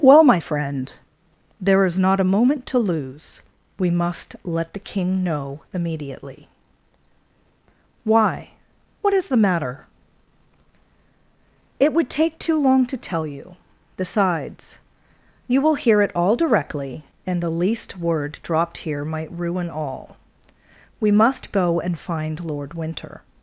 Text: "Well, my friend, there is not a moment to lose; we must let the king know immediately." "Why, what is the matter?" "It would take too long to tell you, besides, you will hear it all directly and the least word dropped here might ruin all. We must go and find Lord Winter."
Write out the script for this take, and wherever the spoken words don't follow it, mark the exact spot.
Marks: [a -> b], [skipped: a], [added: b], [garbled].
"Well, my friend, there is not a moment to lose; we must let the king know immediately." "Why, what is the matter?" "It would take too long to tell you, besides, you will hear it all directly and the least word dropped here might ruin all. We must go and find Lord Winter."